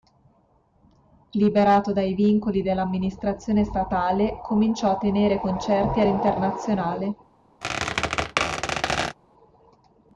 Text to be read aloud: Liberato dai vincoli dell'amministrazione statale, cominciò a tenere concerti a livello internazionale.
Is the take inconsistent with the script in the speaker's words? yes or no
yes